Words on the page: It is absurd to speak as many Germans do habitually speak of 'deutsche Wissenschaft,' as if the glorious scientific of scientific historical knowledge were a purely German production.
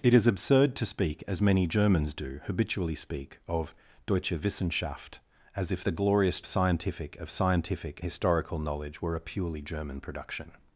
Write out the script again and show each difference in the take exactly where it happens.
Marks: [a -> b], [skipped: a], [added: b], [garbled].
It is absurd to speak as many Germans do habitually speak of 'deutsche Wissenschaft,' as if the glorious scientific of scientific historical knowledge were a purely German production.